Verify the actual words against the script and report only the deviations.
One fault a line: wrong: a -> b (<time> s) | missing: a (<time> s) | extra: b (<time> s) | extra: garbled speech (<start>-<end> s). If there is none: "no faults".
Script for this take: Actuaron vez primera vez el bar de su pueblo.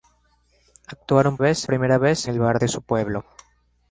no faults